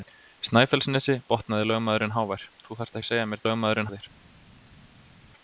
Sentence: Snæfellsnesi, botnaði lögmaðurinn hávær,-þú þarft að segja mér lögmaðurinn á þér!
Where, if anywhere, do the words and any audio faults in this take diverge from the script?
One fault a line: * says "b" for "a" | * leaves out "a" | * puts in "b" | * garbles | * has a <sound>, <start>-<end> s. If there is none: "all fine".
all fine